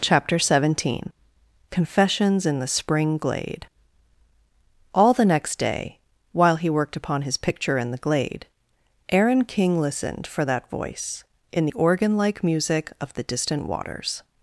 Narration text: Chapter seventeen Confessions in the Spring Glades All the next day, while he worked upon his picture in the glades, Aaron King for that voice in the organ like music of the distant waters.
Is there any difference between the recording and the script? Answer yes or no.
yes